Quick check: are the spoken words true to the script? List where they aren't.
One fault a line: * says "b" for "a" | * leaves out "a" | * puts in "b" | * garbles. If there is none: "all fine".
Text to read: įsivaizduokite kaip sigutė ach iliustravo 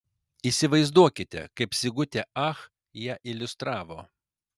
* puts in "ją"